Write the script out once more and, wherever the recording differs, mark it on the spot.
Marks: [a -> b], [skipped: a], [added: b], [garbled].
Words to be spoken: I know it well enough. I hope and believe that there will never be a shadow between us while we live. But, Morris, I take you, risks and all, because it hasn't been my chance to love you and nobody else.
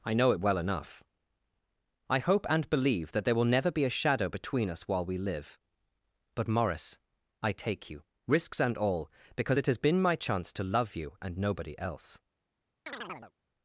I know it well enough. I hope and believe that there will never be a shadow between us while we live. But, Morris, I take you, risks and all, because it [hasn't -> has] been my chance to love you and nobody else.